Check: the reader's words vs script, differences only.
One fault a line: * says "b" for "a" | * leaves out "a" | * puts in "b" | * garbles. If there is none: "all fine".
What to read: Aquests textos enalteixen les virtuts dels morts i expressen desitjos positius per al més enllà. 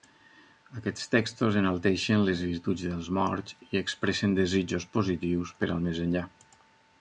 all fine